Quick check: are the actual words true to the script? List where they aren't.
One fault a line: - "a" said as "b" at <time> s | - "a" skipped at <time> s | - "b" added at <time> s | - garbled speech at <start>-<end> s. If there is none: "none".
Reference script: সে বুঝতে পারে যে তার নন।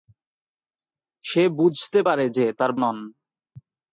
none